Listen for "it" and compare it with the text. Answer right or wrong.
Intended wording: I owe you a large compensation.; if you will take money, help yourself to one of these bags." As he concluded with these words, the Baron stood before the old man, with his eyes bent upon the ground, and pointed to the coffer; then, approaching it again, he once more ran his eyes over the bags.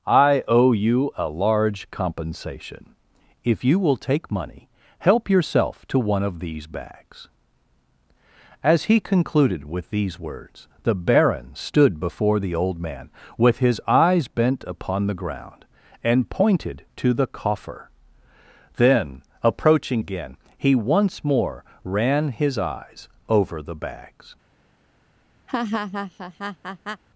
wrong